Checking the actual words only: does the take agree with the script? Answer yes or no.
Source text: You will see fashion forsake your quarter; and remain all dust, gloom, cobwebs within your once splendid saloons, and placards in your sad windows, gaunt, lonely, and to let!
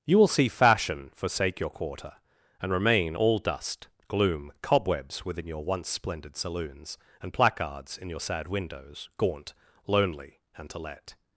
yes